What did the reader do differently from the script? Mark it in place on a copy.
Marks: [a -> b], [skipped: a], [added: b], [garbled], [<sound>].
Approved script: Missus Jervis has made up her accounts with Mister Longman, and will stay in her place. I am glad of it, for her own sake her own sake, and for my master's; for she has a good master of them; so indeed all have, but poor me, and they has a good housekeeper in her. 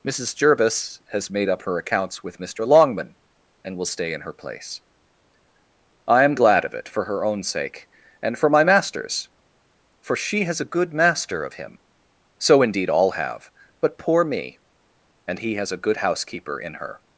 Missus Jervis has made up her accounts with Mister Longman, and will stay in her place. I am glad of it, for her own sake [skipped: her own sake,] and for my master's; for she has a good master of [them; -> him] so indeed all have, but poor me, and [they -> he] has a good housekeeper in her.